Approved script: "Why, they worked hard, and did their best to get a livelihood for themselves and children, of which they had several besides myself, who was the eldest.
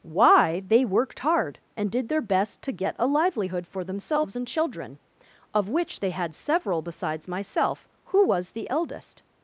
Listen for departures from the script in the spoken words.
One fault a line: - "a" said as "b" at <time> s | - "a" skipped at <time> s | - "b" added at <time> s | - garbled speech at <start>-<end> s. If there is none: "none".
none